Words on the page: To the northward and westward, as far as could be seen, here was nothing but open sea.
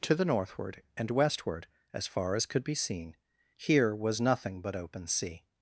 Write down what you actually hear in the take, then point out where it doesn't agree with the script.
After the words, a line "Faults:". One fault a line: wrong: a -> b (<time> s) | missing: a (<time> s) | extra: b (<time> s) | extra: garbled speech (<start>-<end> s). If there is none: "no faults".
To the northward and westward, as far as could be seen, here was nothing but open sea.
Faults:
no faults